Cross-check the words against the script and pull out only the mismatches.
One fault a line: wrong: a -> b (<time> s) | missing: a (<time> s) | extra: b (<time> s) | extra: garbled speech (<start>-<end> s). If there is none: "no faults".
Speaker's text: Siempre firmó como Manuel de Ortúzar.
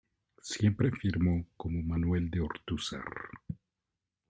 no faults